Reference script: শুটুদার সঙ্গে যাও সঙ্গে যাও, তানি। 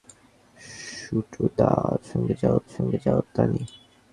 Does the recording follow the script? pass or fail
pass